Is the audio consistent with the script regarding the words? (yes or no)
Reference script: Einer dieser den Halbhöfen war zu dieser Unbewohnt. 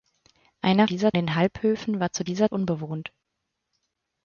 yes